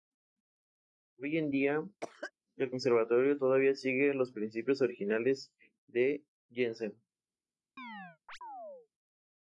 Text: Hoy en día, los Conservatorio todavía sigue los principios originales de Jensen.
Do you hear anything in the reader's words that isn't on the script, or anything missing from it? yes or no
yes